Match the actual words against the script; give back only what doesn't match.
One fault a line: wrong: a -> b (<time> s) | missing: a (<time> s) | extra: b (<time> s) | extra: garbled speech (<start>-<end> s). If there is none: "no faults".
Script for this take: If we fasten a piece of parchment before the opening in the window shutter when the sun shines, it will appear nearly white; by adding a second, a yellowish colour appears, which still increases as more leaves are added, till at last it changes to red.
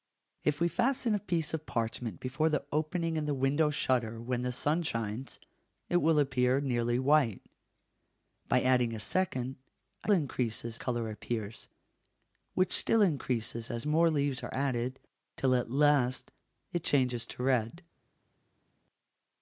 wrong: yellowish -> increases (10.1 s)